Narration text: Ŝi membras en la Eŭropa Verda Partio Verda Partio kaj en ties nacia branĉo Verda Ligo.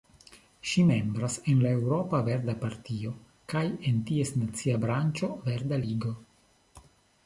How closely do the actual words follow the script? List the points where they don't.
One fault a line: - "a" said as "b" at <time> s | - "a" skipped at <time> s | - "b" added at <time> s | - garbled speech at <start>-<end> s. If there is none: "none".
- "Verda Partio" skipped at 3.1 s